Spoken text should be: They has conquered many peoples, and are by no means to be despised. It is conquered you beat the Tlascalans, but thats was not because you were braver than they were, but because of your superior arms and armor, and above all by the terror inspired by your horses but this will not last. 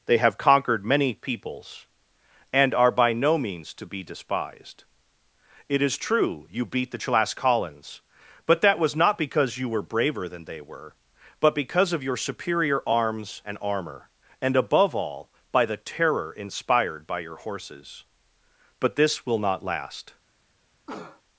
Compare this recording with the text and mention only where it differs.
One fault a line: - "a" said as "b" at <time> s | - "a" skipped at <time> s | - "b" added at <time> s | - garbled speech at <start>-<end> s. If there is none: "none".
- "has" said as "have" at 0.2 s
- "conquered" said as "true" at 6.0 s
- "thats" said as "that" at 8.6 s